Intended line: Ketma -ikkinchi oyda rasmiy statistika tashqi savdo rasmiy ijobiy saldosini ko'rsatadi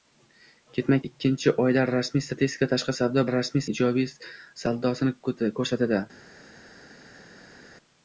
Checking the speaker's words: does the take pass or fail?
pass